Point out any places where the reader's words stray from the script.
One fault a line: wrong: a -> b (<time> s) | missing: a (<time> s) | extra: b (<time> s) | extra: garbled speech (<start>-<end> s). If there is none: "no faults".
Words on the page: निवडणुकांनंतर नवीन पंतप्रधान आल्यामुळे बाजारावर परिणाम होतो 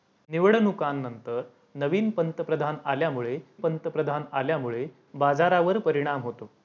extra: पंतप्रधान आल्यामुळे (3.5 s)